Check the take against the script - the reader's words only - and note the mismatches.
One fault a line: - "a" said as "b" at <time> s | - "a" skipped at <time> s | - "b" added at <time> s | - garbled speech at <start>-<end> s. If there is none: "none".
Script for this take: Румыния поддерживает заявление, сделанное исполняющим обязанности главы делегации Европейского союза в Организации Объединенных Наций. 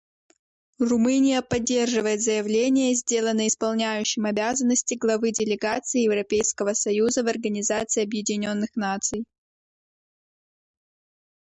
none